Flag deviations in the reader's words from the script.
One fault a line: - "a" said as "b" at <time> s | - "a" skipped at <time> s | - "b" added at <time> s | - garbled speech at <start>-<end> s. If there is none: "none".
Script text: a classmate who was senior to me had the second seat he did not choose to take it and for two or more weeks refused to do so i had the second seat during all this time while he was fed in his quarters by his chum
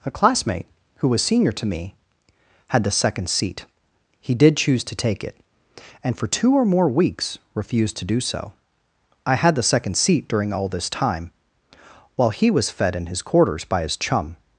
- "not" skipped at 4.6 s